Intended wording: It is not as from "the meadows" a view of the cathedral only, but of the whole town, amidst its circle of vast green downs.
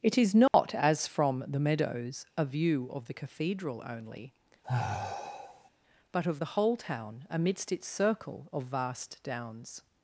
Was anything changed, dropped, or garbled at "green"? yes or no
yes